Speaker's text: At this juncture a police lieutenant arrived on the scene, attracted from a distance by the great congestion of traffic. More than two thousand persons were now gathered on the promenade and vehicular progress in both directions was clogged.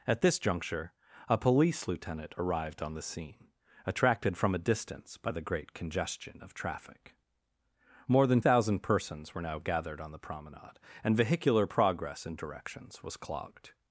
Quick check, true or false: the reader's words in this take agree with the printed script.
false